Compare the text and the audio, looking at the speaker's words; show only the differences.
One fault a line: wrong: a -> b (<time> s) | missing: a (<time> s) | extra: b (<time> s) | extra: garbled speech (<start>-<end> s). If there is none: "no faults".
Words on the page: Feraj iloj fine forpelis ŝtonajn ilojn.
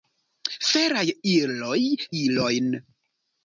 missing: fine forpelis ŝtonajn (1.8 s)